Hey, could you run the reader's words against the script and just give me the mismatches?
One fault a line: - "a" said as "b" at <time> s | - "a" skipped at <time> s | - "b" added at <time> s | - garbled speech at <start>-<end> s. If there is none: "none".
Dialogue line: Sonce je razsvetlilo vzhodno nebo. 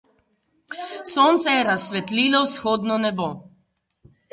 none